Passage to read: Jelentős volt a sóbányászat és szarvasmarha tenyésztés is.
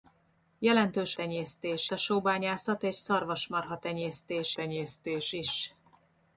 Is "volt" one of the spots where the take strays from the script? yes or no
yes